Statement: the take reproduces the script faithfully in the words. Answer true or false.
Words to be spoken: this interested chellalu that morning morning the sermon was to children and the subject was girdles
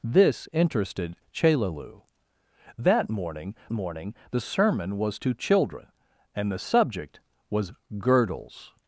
true